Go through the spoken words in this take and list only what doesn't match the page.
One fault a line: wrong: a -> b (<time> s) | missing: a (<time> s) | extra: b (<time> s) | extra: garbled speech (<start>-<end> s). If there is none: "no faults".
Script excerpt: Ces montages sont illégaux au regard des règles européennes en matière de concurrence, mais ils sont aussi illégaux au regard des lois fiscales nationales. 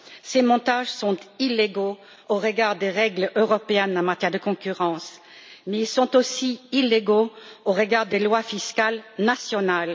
no faults